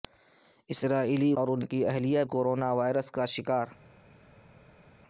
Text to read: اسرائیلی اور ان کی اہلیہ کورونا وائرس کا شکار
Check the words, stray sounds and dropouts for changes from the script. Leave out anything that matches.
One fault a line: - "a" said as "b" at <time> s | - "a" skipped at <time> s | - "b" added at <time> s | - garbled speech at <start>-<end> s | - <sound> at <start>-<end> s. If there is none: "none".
none